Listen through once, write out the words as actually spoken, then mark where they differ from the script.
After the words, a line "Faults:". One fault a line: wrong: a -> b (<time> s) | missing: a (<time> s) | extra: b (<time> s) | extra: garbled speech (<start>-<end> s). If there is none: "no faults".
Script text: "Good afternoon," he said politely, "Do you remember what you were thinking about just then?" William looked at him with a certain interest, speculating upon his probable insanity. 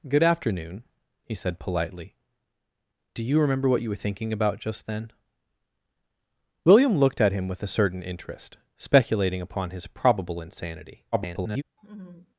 "Good afternoon," he said politely, "Do you remember what you were thinking about just then?" William looked at him with a certain interest, speculating upon his probable insanity. [garbled]
Faults:
extra: garbled speech (11.1-11.6 s)